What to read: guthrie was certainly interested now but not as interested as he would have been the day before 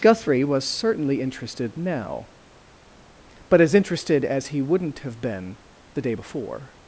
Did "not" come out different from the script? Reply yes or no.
yes